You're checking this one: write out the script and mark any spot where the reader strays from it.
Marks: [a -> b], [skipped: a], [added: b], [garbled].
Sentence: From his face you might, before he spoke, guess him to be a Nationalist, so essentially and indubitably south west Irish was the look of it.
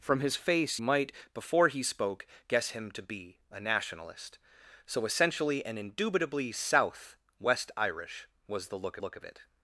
From his face [skipped: you] might, before he spoke, guess him to be a Nationalist, so essentially and indubitably south west Irish was the look [added: look] of it.